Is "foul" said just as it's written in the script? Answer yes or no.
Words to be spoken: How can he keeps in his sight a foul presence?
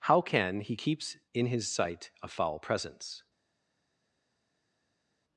yes